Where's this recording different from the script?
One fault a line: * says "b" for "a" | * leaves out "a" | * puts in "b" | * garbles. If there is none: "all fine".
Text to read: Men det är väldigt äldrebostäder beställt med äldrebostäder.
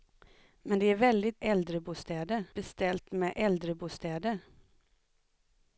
all fine